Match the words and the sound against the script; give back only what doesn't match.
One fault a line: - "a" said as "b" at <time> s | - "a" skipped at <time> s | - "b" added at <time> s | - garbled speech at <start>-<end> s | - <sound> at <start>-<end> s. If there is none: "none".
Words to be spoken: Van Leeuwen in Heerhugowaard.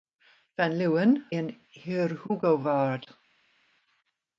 none